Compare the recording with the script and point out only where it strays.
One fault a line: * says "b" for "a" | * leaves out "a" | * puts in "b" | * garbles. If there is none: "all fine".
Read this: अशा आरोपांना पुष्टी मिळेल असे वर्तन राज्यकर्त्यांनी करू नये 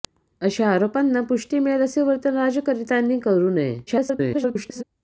* garbles